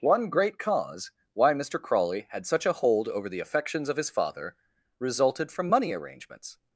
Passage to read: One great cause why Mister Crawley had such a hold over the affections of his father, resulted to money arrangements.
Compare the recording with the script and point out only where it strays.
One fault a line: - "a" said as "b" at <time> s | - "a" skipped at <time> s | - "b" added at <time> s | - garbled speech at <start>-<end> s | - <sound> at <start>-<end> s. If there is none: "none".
- "to" said as "from" at 5.5 s